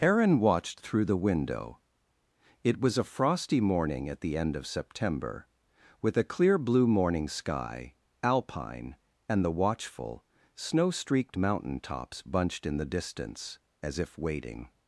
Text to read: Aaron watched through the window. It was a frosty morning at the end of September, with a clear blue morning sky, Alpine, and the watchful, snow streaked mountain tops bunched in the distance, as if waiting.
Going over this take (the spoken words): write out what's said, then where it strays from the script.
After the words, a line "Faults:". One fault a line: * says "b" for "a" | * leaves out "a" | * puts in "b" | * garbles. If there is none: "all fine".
Aaron watched through the window. It was a frosty morning at the end of September, with a clear blue morning sky, Alpine, and the watchful, snow streaked mountain tops bunched in the distance, as if waiting.
Faults:
all fine